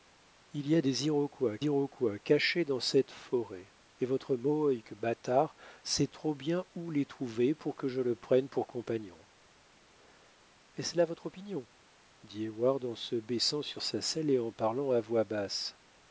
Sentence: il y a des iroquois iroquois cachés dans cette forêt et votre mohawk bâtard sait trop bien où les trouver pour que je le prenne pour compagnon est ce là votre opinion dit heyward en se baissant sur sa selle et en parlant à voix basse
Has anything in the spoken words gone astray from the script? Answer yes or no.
no